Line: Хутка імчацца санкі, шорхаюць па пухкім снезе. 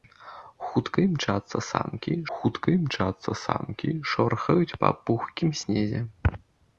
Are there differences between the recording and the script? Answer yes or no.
yes